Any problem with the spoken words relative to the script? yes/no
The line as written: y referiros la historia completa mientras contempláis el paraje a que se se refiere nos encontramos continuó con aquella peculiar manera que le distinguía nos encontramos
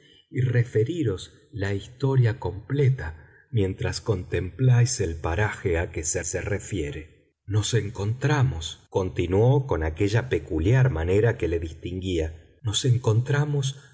no